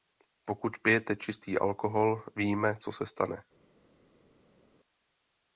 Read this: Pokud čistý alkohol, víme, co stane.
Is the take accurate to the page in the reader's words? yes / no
no